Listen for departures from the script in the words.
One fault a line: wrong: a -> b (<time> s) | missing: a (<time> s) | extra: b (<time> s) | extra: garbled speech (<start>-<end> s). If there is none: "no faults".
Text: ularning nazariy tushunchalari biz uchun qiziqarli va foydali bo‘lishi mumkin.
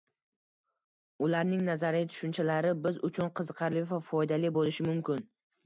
no faults